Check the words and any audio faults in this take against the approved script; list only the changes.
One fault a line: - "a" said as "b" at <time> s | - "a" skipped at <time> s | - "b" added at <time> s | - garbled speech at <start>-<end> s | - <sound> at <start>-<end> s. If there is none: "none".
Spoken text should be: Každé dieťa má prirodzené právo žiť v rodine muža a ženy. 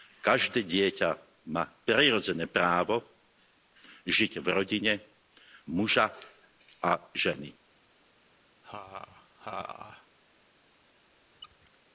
- laugh at 8.6-10.1 s
- squeak at 11.3-11.8 s